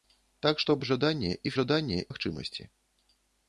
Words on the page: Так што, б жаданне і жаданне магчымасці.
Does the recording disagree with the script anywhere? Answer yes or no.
no